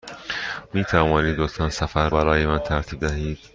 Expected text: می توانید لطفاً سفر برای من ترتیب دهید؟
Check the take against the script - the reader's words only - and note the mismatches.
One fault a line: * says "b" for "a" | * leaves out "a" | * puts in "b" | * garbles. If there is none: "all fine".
all fine